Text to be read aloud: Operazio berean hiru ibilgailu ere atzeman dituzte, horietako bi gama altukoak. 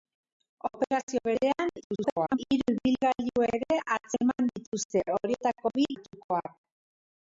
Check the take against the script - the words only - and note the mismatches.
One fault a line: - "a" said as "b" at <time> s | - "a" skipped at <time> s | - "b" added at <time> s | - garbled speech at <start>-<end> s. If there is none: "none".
- garbled speech at 1.8-2.4 s
- "gama" skipped at 5.9 s